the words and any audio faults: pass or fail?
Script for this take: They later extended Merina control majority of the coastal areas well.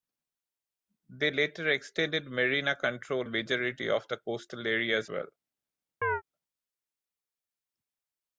fail